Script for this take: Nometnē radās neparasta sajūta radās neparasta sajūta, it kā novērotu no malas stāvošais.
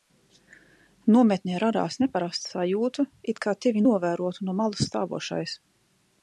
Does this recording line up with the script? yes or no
no